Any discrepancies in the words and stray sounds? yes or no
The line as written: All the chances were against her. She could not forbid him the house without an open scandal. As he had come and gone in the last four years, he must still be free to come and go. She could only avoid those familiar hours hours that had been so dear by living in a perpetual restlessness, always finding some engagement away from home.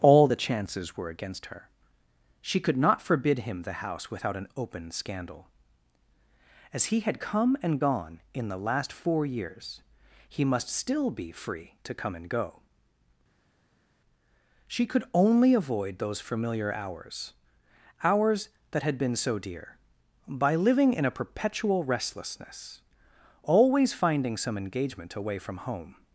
no